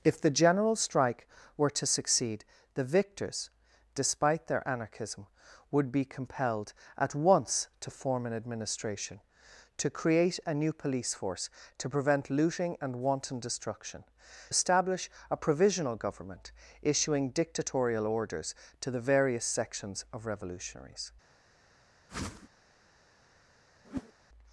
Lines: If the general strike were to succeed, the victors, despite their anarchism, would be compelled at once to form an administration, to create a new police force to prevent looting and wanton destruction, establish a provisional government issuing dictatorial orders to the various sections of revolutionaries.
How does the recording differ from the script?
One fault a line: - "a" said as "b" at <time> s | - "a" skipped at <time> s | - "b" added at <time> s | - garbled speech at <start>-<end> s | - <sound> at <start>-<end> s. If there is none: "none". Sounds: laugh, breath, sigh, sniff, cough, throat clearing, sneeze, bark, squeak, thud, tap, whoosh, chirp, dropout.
- whoosh at 22.1-22.5 s
- whoosh at 23.8-24.1 s